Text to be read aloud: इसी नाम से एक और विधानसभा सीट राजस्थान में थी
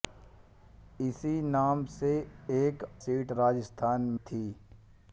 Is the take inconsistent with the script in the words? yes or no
yes